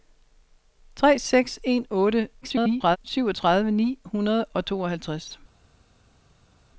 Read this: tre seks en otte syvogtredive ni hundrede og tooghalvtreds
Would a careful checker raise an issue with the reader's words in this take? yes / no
yes